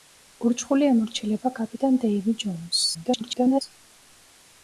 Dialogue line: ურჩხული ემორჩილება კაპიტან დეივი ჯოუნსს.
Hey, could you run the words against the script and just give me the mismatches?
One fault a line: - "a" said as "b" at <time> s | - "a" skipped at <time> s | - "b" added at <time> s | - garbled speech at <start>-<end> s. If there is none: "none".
- garbled speech at 2.9-3.6 s